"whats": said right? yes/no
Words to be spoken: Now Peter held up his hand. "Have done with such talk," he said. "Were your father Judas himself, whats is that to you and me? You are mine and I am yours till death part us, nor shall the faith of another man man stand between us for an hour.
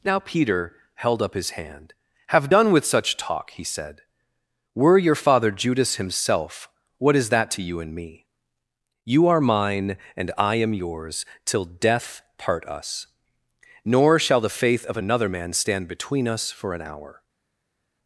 no